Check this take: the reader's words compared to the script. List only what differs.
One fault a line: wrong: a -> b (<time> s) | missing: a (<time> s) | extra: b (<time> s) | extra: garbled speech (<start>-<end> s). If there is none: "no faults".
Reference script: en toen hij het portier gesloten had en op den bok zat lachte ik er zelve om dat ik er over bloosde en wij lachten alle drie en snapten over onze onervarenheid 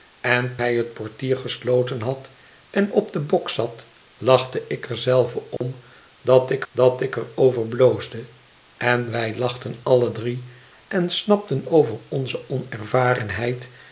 missing: toen (0.6 s)
extra: dat ik (6.7 s)